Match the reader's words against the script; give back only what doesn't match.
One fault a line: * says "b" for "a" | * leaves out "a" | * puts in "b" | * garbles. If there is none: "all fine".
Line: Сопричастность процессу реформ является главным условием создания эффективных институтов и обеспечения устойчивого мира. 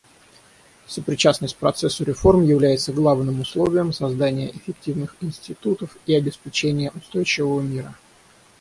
all fine